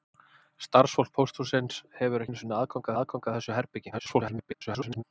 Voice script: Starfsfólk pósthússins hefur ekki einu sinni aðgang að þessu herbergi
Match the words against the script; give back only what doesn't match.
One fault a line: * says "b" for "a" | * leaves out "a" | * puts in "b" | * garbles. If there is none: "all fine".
* leaves out "ekki"
* puts in "aðgang"
* garbles